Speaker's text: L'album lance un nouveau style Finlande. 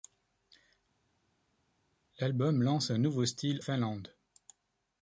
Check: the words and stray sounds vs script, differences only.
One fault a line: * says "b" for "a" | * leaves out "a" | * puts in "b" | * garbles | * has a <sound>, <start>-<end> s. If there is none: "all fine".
all fine